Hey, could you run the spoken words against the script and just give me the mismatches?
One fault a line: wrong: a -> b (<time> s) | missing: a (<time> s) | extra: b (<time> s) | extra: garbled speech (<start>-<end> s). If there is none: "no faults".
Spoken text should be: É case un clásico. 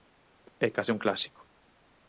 no faults